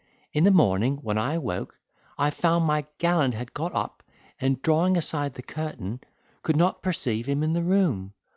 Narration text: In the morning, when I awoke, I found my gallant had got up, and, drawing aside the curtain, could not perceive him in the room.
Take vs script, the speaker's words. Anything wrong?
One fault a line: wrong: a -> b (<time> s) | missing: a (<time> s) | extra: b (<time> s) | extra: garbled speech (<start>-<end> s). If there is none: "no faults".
no faults